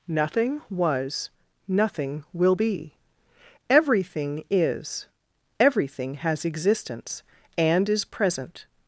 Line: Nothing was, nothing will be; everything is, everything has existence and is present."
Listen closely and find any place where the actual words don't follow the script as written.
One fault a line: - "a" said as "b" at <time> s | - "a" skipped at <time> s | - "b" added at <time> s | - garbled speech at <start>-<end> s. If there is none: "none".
none